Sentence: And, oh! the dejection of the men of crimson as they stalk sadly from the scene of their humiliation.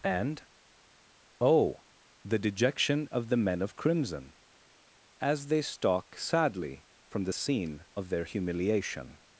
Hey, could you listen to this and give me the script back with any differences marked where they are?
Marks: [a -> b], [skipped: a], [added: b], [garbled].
And, oh! the dejection of the men of crimson as they stalk sadly from the scene of their humiliation.